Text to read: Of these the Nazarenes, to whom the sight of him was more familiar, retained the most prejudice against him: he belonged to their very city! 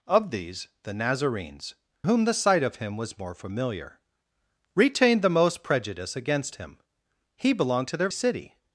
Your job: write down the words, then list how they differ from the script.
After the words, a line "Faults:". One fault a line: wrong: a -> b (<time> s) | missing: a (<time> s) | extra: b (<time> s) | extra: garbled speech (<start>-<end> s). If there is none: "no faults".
Of these the Nazarenes, whom the sight of him was more familiar, retained the most prejudice against him: he belonged to their city!
Faults:
missing: to (1.8 s)
missing: very (8.1 s)